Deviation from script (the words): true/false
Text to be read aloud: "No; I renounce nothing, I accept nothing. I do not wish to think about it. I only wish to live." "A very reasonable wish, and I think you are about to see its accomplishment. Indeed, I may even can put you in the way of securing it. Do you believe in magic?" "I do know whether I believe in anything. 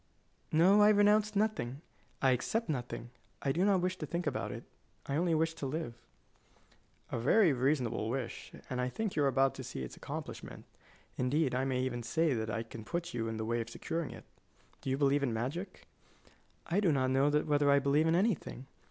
true